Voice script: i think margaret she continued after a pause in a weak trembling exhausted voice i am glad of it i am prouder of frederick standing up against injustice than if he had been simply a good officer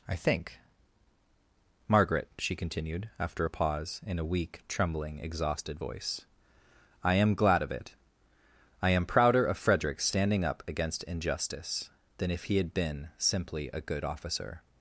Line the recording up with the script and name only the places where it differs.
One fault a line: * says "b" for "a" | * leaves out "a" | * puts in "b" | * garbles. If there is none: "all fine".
all fine